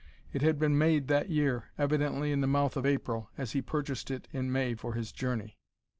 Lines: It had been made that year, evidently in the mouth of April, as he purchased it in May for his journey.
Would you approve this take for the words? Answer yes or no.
yes